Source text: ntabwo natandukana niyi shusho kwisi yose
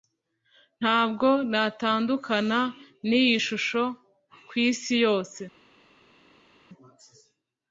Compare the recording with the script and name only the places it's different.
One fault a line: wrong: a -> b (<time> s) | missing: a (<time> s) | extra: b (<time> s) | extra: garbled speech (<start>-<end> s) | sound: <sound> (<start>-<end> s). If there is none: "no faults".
no faults